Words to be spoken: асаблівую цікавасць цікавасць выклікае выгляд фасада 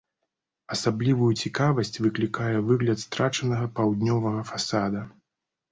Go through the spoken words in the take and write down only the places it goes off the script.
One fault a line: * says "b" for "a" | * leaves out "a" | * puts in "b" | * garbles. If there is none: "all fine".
* leaves out "цікавасць"
* puts in "страчанага паўднёвага"